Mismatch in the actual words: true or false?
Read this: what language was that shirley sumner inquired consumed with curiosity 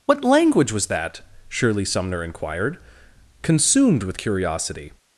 false